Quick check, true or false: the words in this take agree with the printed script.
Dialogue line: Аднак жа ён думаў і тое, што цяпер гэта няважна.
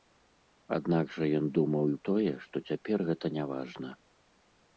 true